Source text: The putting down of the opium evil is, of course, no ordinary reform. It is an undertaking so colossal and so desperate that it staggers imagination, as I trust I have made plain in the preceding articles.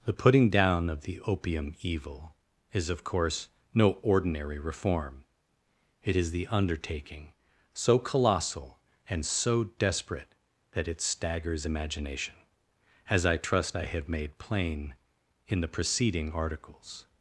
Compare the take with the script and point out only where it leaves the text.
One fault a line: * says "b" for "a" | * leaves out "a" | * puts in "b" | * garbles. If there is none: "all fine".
* says "the" for "an"